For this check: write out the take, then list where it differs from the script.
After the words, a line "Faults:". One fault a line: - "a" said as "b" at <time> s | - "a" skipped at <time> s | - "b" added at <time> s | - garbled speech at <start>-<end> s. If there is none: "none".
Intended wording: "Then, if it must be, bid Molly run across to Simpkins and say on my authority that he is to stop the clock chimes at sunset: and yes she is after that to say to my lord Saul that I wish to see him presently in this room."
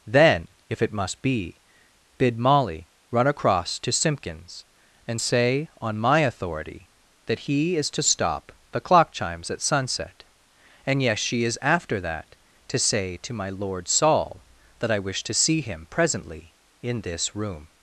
"Then, if it must be, bid Molly run across to Simpkins and say on my authority that he is to stop the clock chimes at sunset: and yes she is after that to say to my lord Saul that I wish to see him presently in this room."
Faults:
none